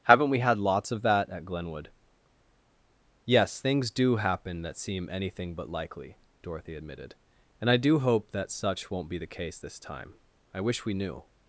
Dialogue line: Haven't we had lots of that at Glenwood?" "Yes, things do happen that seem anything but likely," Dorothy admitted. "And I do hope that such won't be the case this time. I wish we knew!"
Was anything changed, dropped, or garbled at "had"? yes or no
no